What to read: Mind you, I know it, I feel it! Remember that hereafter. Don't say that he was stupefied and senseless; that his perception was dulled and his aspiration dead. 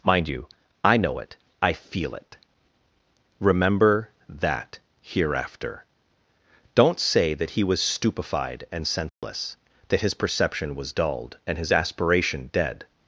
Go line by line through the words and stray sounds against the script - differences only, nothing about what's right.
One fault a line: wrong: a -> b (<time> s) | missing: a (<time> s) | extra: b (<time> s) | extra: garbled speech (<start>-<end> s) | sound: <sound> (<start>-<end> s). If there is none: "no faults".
sound: dropout (9.1-9.2 s)